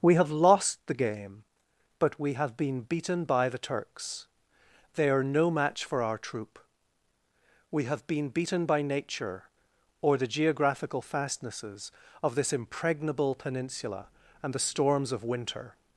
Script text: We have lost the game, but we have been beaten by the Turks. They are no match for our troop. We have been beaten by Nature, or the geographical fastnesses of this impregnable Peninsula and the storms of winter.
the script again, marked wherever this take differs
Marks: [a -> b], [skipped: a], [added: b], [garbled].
We have lost the game, but we have been beaten by the Turks. They are no match for our troop. We have been beaten by Nature, or the geographical fastnesses of this impregnable Peninsula and the storms of winter.